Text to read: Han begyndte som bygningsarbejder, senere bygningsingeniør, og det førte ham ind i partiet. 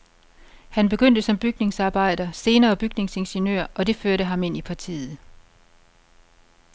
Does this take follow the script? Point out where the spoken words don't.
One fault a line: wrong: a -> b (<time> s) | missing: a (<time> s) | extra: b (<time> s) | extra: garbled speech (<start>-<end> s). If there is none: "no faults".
no faults